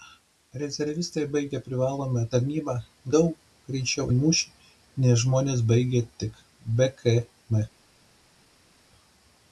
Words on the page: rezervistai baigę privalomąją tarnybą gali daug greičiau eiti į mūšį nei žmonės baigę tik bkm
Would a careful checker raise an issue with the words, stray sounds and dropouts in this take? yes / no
yes